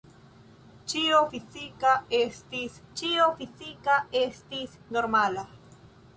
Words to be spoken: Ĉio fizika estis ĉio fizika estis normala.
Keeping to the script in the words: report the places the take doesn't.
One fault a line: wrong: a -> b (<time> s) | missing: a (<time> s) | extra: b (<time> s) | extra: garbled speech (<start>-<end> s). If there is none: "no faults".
no faults